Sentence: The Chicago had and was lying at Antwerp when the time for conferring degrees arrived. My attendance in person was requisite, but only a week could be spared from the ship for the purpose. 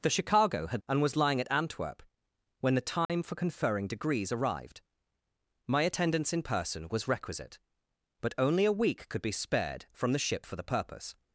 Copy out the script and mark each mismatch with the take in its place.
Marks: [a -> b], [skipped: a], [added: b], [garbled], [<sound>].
The Chicago had and was lying at Antwerp when the time [dropout] for conferring degrees arrived. My attendance in person was requisite, but only a week could be spared from the ship for the purpose.